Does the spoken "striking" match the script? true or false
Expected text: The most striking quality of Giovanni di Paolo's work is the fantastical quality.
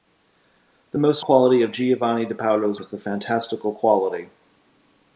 false